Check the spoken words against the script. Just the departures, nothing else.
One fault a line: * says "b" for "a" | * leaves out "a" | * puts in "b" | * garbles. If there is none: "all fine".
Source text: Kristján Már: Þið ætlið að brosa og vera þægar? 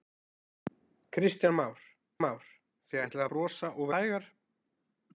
* puts in "Már"
* leaves out "að"
* leaves out "vera"